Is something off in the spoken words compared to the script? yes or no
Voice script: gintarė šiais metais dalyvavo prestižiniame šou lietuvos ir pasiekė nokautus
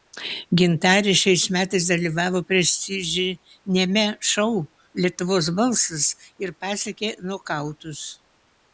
yes